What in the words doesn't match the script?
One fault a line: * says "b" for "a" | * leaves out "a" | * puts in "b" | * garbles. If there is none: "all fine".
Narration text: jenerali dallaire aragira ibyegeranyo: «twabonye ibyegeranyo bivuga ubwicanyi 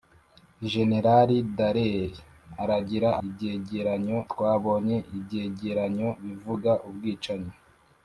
all fine